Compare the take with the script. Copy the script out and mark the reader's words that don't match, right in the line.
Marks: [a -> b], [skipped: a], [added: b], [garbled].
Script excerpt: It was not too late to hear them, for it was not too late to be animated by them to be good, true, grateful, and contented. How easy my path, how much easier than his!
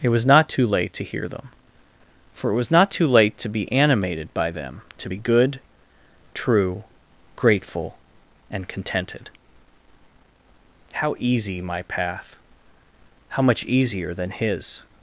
It was not too late to hear them, for it was not too late to be animated by them to be good, true, grateful, and contented. How easy my path, how much easier than his!